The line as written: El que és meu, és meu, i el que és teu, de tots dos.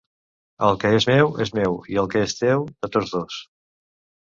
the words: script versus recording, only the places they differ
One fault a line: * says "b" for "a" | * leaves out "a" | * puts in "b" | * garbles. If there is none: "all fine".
all fine